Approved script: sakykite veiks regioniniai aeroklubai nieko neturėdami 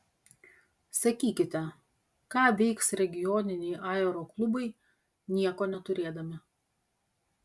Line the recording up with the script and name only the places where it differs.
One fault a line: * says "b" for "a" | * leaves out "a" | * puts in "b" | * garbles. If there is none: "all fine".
* puts in "ką"